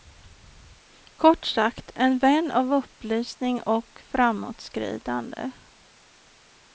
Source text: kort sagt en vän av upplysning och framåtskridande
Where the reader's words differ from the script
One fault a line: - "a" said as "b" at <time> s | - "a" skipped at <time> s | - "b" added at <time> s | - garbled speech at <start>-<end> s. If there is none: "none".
none